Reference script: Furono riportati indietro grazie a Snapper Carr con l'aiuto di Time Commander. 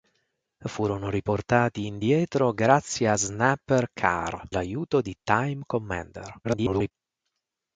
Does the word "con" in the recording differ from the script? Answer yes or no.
yes